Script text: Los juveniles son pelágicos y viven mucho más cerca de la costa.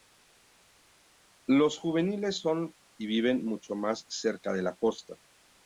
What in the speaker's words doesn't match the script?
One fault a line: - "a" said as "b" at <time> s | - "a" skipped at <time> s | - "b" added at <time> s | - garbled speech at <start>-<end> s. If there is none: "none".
- "pelágicos" skipped at 2.7 s